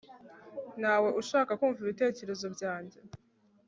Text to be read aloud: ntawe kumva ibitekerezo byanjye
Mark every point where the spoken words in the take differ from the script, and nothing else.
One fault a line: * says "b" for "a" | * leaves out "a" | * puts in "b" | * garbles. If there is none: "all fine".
* puts in "ushaka"